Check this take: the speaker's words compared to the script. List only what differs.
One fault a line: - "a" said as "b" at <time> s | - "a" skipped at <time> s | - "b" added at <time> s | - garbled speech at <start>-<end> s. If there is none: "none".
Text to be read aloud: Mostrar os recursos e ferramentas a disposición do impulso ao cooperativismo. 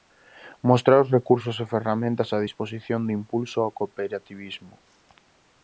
none